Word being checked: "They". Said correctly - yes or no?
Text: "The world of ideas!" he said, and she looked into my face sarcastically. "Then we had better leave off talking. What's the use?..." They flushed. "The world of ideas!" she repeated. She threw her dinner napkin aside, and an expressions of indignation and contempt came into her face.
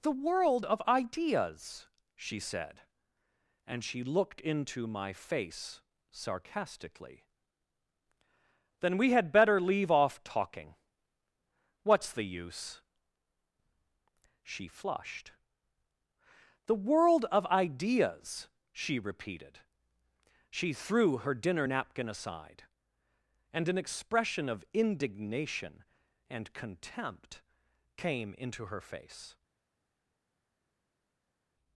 no